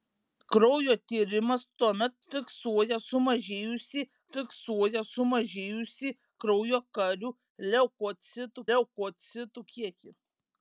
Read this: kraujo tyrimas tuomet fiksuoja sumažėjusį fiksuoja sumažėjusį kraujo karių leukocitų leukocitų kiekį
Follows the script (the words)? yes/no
yes